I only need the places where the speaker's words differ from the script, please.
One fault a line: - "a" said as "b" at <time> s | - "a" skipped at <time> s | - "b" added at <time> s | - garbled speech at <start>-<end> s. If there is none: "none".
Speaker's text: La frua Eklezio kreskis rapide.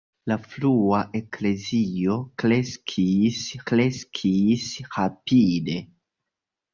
- "kreskis" added at 3.7 s